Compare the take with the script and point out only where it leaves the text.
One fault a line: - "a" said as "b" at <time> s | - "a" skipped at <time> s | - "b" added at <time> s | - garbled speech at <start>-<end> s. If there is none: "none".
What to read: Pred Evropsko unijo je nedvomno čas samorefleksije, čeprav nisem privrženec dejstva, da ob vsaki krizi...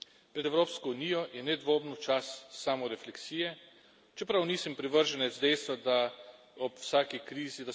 none